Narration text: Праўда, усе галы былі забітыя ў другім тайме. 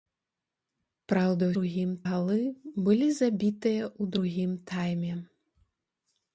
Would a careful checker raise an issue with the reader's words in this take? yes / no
yes